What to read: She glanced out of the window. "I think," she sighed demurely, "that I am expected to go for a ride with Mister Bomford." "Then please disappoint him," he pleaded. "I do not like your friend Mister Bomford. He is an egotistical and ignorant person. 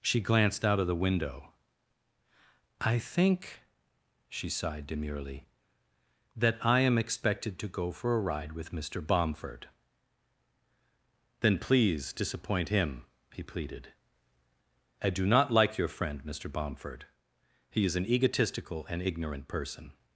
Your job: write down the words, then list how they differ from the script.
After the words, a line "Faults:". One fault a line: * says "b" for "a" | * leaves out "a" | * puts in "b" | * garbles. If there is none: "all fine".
She glanced out of the window. "I think," she sighed demurely, "that I am expected to go for a ride with Mister Bomford." "Then please disappoint him," he pleaded. "I do not like your friend Mister Bomford. He is an egotistical and ignorant person.
Faults:
all fine